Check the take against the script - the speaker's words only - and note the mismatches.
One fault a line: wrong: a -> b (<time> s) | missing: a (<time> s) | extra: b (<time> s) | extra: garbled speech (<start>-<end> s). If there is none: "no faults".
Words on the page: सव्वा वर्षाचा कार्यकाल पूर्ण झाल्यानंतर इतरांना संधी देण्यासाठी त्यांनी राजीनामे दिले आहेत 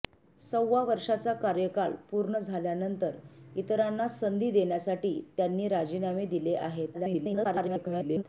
extra: garbled speech (6.9-8.2 s)